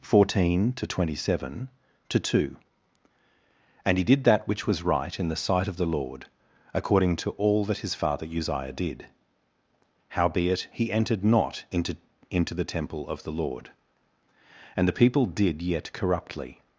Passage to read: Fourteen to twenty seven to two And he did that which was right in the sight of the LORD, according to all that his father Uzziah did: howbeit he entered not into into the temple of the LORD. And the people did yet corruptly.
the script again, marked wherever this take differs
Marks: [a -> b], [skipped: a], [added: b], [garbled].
Fourteen to twenty seven to two And he did that which was right in the sight of the LORD, according to all that his father Uzziah did: howbeit he entered not into into the temple of the LORD. And the people did yet corruptly.